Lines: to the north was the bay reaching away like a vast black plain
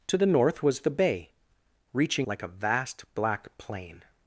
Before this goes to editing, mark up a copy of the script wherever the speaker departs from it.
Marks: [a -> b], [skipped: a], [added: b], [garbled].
to the north was the bay reaching [skipped: away] like a vast black plain